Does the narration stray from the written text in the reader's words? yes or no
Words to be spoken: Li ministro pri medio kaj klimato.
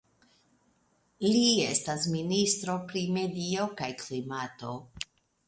yes